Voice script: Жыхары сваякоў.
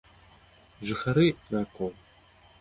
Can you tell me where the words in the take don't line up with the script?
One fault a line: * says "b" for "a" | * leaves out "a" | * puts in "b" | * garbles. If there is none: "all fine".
all fine